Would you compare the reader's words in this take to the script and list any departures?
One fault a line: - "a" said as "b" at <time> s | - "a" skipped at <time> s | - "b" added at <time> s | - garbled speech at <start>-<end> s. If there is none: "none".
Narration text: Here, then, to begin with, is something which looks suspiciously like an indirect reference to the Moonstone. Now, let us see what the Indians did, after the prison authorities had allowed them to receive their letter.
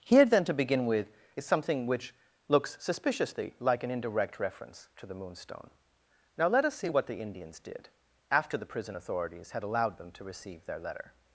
none